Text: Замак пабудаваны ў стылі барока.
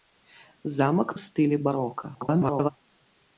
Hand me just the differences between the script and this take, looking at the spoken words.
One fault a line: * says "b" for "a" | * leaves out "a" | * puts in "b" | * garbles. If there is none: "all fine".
* leaves out "пабудаваны"
* garbles